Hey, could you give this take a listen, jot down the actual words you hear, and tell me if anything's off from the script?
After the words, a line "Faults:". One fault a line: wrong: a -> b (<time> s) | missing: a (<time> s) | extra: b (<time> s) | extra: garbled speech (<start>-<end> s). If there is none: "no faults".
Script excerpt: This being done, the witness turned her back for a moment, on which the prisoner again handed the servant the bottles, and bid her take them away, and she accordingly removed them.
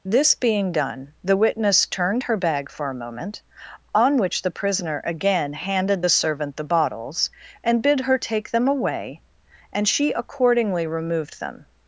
This being done, the witness turned her bag for a moment, on which the prisoner again handed the servant the bottles, and bid her take them away, and she accordingly removed them.
Faults:
wrong: back -> bag (2.4 s)